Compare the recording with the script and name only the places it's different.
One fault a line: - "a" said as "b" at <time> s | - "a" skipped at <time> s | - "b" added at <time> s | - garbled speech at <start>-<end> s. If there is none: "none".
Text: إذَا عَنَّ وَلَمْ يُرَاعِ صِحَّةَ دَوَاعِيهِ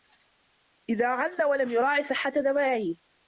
none